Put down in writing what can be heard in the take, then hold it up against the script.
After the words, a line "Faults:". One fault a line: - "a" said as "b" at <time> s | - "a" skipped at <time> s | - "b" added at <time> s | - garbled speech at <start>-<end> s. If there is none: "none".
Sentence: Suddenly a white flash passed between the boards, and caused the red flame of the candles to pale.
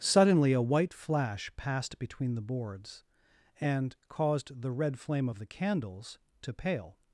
Suddenly a white flash passed between the boards, and caused the red flame of the candles to pale.
Faults:
none